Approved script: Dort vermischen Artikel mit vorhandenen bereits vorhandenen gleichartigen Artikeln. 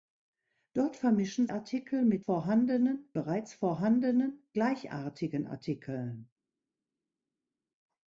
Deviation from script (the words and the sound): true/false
false